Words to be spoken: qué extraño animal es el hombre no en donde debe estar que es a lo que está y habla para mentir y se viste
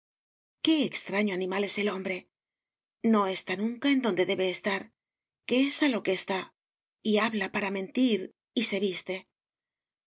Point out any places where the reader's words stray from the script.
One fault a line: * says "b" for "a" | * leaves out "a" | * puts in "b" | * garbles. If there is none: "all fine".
* puts in "está nunca"